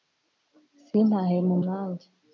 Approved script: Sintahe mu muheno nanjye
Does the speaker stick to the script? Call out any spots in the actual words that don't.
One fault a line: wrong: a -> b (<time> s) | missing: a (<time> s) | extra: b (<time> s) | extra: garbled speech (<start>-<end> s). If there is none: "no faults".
missing: muheno (1.6 s)